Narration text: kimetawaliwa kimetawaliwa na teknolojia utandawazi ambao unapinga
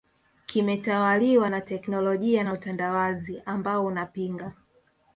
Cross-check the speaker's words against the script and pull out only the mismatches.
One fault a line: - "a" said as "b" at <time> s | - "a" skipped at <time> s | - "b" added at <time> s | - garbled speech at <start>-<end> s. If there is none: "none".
- "kimetawaliwa" skipped at 1.5 s
- "na" added at 2.4 s